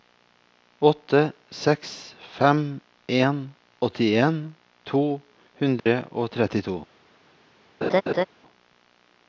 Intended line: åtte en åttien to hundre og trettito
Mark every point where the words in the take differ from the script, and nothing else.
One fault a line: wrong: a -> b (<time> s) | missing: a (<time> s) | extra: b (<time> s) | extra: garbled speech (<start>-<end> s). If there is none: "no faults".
extra: seks fem (1.5 s)